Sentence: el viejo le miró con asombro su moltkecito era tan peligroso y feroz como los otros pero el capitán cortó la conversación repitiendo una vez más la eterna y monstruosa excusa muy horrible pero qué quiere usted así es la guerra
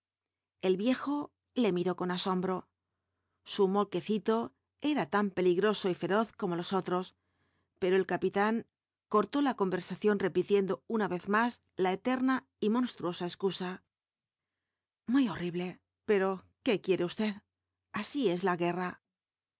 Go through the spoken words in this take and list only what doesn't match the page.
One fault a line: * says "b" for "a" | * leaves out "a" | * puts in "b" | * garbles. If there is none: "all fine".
all fine